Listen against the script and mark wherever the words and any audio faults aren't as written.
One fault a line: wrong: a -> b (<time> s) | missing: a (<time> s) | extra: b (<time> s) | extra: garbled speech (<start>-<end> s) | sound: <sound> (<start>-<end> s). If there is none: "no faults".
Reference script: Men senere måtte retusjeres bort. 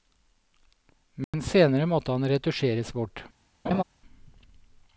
sound: dropout (1.2-1.3 s)
extra: han (2.1 s)
sound: laugh (3.7-3.8 s)